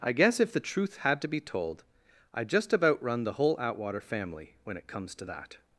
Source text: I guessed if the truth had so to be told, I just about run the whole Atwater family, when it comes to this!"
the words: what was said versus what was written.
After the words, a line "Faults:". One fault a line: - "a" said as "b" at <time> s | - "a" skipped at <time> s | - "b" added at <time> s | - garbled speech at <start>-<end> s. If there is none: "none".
I guess if the truth had to be told, I just about run the whole Atwater family, when it comes to that!"
Faults:
- "guessed" said as "guess" at 0.1 s
- "so" skipped at 1.2 s
- "this" said as "that" at 5.2 s